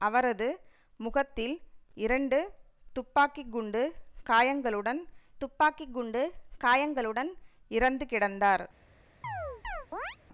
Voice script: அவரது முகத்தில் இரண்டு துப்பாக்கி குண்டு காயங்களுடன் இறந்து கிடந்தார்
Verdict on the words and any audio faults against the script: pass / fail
fail